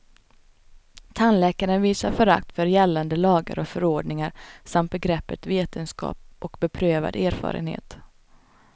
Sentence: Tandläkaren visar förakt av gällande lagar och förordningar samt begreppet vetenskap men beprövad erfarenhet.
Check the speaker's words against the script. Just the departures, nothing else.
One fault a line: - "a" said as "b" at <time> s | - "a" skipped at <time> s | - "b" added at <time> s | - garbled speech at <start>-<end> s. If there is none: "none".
- "av" said as "för" at 2.5 s
- "men" said as "och" at 6.4 s